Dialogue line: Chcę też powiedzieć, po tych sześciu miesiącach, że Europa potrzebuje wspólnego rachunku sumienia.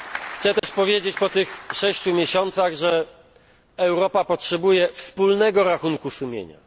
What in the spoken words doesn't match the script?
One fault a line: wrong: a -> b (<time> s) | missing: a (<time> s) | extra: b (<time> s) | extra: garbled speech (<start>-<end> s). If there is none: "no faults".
no faults